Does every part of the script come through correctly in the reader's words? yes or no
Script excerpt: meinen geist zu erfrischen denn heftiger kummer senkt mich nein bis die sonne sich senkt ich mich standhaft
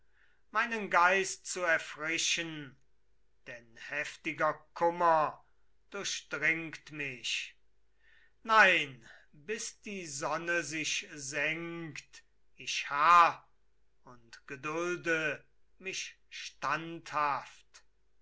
no